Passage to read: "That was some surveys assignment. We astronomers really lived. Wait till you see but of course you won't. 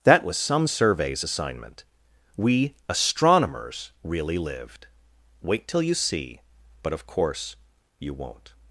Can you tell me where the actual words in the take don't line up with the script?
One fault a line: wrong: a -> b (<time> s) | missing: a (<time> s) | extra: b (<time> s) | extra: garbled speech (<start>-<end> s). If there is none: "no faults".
no faults